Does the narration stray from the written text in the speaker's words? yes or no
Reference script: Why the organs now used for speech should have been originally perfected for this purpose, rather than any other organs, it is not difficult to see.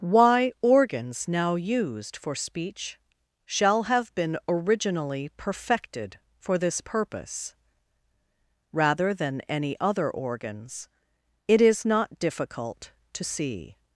yes